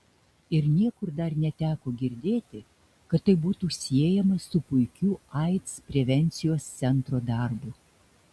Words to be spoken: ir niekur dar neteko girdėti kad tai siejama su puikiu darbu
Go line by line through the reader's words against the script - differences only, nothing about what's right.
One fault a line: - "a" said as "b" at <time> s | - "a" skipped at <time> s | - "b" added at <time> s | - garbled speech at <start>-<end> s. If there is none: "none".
- "būtų" added at 3.5 s
- "aids prevencijos centro" added at 5.4 s